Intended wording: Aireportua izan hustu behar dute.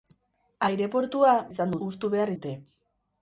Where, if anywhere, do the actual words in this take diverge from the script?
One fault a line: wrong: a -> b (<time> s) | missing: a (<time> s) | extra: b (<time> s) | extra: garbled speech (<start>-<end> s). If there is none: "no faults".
no faults